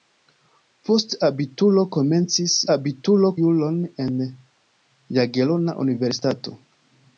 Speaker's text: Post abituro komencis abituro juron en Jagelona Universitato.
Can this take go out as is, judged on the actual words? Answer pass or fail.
pass